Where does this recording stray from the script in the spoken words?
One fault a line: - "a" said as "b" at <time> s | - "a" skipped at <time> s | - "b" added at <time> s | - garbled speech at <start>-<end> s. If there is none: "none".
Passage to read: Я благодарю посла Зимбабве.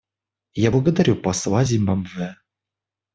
none